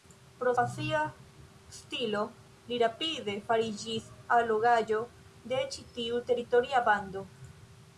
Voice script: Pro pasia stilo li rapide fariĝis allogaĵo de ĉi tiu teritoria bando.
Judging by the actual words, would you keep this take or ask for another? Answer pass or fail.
pass